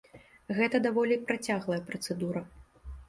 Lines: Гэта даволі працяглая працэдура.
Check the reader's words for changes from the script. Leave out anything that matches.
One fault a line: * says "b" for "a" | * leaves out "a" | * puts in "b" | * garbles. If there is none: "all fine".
all fine